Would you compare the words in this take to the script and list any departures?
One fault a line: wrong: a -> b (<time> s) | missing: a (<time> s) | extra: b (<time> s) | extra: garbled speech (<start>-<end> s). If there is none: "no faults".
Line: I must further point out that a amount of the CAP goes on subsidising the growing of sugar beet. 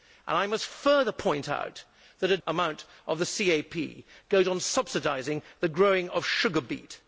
no faults